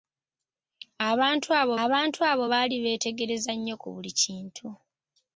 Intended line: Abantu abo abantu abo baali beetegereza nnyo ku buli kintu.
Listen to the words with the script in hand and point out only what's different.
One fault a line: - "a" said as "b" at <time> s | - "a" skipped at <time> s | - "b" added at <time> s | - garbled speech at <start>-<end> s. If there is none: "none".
none